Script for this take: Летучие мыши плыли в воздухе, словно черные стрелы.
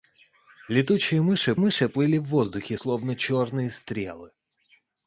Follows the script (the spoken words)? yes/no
no